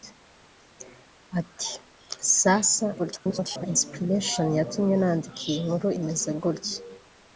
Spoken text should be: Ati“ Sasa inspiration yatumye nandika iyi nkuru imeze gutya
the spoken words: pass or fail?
fail